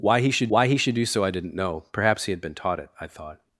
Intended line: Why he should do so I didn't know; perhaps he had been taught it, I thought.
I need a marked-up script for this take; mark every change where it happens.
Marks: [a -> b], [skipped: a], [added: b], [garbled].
Why he should [added: why he should] do so I didn't know; perhaps he had been taught it, I thought.